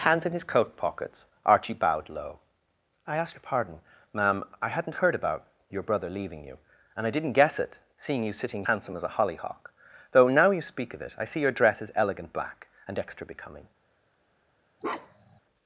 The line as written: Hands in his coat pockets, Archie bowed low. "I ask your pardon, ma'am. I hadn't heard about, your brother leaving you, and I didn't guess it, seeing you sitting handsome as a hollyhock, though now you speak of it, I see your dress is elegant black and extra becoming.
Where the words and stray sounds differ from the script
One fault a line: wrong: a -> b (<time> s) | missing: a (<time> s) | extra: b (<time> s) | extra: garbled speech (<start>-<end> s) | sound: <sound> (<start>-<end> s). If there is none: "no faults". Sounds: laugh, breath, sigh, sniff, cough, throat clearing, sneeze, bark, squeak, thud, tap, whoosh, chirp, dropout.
sound: bark (14.8-15.4 s)